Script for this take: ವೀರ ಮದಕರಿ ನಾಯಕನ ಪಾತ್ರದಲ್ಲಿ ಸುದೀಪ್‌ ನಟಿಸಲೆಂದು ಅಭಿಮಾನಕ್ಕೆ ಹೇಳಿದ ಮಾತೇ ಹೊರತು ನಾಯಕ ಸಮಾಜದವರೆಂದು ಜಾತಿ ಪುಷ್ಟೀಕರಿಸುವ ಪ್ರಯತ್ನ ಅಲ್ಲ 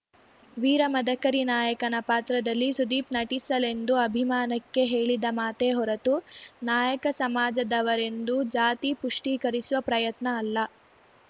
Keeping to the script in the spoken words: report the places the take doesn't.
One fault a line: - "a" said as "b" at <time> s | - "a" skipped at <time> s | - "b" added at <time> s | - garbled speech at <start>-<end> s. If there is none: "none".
none